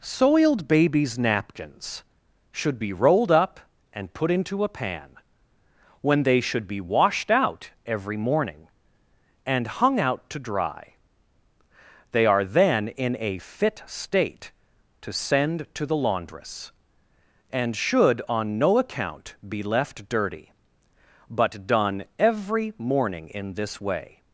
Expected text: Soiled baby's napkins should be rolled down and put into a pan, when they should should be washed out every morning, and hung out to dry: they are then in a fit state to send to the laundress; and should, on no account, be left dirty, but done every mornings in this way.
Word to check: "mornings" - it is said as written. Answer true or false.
false